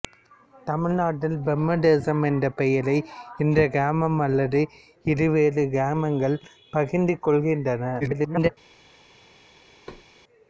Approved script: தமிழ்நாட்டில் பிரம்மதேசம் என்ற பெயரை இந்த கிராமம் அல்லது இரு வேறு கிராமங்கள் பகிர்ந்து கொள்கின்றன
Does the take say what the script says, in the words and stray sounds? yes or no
no